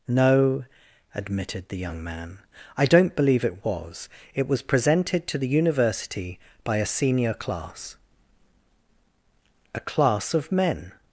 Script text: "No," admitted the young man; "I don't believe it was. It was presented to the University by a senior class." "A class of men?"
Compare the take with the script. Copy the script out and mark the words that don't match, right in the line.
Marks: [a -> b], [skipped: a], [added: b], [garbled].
"No," admitted the young man; "I don't believe it was. It was presented to the University by a senior class." "A class of men?"